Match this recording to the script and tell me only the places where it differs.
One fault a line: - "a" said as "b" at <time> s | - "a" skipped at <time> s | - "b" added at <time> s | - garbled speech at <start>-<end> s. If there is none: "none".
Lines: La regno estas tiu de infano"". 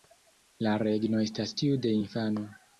none